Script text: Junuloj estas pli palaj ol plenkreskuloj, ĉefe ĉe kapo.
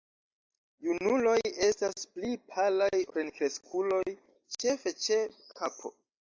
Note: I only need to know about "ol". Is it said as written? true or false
false